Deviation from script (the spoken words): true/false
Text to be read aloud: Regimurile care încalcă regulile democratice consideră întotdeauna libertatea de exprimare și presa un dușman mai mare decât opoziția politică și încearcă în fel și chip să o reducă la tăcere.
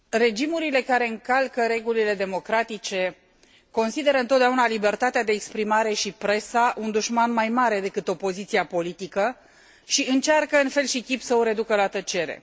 false